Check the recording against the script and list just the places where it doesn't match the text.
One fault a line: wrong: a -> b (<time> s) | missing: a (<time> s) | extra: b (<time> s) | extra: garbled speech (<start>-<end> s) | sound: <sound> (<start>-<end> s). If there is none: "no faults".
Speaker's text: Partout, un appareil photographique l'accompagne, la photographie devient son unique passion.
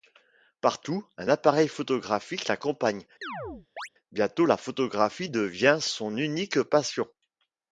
sound: chirp (3.2-3.9 s)
extra: bientôt (4.1 s)